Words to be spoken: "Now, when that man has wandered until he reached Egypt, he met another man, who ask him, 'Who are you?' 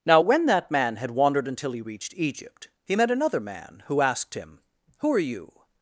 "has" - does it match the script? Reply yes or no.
no